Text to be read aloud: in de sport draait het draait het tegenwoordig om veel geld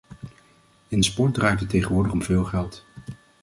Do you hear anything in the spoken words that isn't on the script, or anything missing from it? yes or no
yes